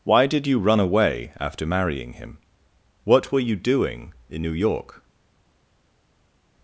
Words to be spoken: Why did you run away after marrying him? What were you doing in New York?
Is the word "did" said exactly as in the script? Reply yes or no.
yes